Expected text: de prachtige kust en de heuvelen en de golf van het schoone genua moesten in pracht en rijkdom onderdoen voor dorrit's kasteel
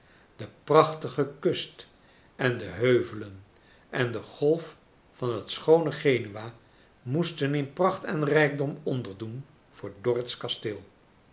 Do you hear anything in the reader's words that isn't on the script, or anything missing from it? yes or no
no